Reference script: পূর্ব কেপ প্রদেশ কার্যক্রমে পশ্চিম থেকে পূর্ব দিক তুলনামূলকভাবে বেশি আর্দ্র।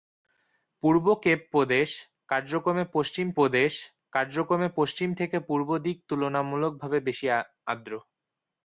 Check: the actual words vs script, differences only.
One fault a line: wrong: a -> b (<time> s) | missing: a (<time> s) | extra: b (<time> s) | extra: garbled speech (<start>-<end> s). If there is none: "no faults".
extra: প্রদেশ কার্যক্রমে পশ্চিম (3.4 s)